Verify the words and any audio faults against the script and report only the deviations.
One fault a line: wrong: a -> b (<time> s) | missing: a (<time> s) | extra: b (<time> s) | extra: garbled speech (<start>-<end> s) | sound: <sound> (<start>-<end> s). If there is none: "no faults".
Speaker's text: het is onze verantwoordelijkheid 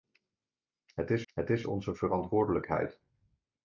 extra: het is (1.3 s)